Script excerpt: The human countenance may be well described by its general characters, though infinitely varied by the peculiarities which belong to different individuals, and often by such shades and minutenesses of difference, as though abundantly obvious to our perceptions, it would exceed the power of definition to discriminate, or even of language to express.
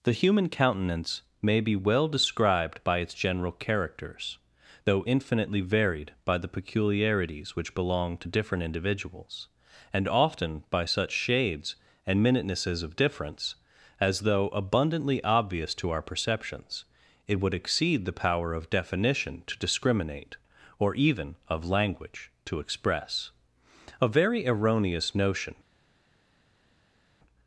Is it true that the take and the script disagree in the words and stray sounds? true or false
true